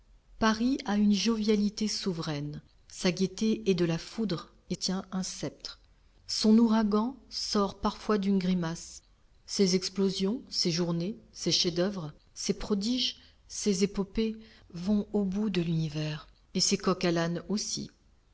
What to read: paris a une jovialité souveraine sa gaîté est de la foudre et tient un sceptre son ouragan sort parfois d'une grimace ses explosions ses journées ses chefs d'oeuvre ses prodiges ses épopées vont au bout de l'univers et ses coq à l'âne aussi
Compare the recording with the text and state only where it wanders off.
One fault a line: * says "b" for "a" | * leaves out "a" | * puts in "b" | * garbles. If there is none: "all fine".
all fine